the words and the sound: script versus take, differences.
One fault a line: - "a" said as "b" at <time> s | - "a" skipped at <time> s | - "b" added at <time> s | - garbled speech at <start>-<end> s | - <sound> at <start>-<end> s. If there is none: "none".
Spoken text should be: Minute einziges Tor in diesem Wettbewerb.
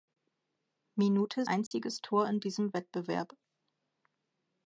- dropout at 1.7-1.7 s